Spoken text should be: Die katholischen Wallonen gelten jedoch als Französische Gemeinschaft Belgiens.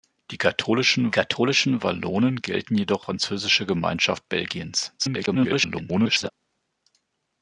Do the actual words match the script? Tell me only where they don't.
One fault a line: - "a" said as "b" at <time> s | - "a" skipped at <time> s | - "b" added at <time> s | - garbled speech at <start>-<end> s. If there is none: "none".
- "katholischen" added at 1.1 s
- "als" skipped at 3.1 s
- garbled speech at 5.0-6.3 s